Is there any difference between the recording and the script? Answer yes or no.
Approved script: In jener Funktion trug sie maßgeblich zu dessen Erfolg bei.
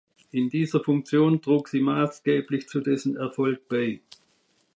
yes